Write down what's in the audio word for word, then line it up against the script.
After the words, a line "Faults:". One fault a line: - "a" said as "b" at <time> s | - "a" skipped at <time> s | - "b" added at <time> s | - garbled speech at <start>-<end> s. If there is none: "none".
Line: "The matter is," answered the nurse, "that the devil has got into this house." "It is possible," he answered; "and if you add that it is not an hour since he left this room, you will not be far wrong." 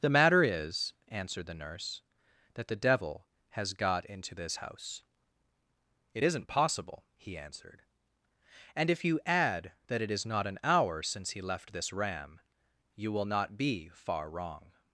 "The matter is," answered the nurse, "that the devil has got into this house." "It isn't possible," he answered; "and if you add that it is not an hour since he left this ram, you will not be far wrong."
Faults:
- "is" said as "isn't" at 6.2 s
- "room" said as "ram" at 11.9 s